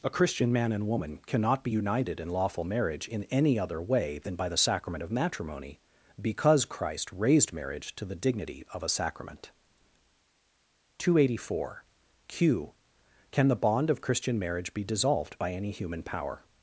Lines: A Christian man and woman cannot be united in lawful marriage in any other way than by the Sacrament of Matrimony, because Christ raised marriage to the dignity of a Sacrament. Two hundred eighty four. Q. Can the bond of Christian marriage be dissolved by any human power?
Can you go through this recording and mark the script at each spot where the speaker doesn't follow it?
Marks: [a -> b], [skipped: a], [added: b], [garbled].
A Christian man and woman cannot be united in lawful marriage in any other way than by the Sacrament of Matrimony, because Christ raised marriage to the dignity of a Sacrament. Two hundred eighty four. Q. Can the bond of Christian marriage be dissolved by any human power?